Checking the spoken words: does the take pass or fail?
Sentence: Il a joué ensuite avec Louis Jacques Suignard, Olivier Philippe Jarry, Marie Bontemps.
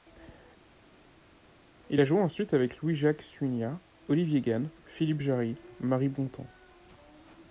fail